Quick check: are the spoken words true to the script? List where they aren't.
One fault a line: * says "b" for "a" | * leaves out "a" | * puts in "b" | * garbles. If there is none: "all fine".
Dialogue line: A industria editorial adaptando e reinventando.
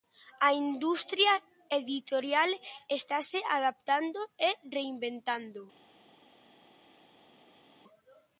* puts in "estase"